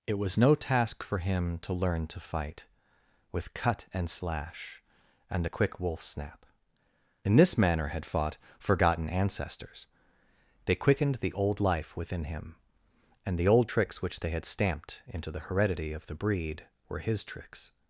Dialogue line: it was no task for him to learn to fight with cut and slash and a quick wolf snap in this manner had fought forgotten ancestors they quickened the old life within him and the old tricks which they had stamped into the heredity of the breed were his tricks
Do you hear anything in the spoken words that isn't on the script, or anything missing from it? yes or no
no